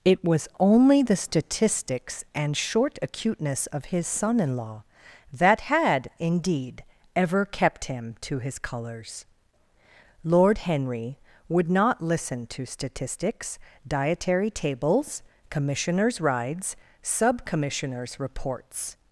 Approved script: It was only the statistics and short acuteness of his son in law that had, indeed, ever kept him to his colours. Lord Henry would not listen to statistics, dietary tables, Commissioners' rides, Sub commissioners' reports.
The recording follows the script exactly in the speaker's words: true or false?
true